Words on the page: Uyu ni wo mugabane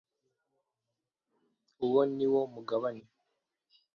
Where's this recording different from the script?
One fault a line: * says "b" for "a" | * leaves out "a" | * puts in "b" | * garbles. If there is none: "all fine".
* says "Uwo" for "Uyu"